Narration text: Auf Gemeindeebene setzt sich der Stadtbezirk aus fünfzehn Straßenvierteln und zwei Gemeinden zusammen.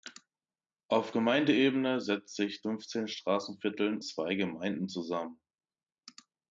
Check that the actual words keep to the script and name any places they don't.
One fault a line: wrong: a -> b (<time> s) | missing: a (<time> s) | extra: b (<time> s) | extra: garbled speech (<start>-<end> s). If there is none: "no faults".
missing: der Stadtbezirk aus (2.6 s)
missing: und (4.0 s)